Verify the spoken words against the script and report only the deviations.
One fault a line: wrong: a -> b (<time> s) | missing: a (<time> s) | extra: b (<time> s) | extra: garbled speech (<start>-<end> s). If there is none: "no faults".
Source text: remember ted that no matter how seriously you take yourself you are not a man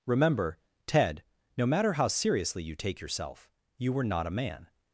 missing: that (1.2 s)
wrong: are -> were (3.9 s)